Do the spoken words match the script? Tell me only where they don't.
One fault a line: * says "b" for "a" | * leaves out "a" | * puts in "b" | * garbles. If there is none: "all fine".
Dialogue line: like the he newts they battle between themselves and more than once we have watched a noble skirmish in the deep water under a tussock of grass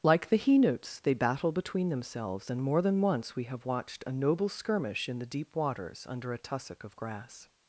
* says "waters" for "water"